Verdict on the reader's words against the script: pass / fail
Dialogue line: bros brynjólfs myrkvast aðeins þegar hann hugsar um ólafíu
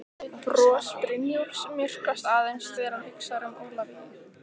pass